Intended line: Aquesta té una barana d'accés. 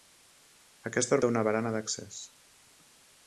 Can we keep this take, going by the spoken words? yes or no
yes